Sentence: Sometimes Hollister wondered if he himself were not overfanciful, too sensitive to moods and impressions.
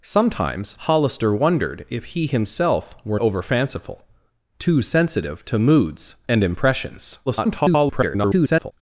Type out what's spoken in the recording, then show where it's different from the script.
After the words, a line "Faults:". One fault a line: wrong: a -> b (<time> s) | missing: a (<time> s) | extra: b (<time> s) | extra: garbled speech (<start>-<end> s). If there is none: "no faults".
Sometimes Hollister wondered if he himself were overfanciful, too sensitive to moods and impressions. [garbled]
Faults:
missing: not (3.2 s)
extra: garbled speech (7.3-8.7 s)